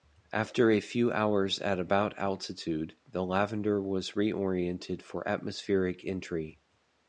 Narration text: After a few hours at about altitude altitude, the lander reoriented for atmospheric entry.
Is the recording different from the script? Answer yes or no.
yes